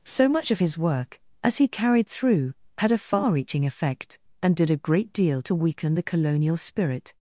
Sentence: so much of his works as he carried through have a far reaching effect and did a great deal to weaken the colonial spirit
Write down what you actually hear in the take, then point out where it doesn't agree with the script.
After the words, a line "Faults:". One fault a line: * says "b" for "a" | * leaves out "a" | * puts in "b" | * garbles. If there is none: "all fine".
so much of his work as he carried through had a far reaching effect and did a great deal to weaken the colonial spirit
Faults:
* says "work" for "works"
* says "had" for "have"